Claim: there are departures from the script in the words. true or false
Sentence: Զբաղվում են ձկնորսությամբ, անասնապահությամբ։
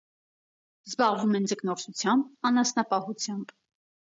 false